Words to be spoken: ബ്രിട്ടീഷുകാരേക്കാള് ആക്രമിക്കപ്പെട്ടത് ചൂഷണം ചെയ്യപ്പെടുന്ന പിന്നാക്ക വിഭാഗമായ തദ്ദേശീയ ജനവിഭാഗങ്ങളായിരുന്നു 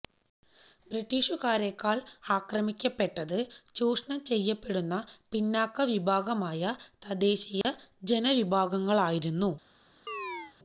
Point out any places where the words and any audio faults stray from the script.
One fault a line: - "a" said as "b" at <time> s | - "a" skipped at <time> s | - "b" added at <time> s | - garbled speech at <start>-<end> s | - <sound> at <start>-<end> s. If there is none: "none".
- dropout at 7.6-7.6 s
- chirp at 10.1-10.5 s